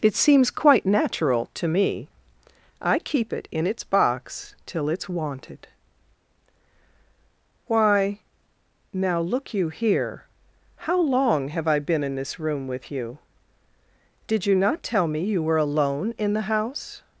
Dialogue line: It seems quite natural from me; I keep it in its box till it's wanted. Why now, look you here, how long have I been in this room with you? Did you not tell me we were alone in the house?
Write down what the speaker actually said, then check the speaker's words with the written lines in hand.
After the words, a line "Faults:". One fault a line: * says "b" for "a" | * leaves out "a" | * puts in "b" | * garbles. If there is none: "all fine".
It seems quite natural to me; I keep it in its box till it's wanted. Why now, look you here, how long have I been in this room with you? Did you not tell me you were alone in the house?
Faults:
* says "to" for "from"
* says "you" for "we"